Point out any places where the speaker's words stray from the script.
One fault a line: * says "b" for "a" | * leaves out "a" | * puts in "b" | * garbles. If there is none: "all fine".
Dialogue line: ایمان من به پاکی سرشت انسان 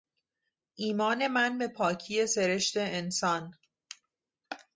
all fine